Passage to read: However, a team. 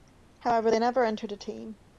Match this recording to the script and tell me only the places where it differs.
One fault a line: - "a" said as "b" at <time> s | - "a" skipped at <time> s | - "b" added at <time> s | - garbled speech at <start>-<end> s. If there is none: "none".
- "they never entered" added at 0.7 s